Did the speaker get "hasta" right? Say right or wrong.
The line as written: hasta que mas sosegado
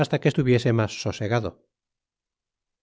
right